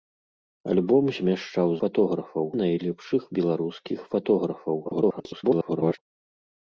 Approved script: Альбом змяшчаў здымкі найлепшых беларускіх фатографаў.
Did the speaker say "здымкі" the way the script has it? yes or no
no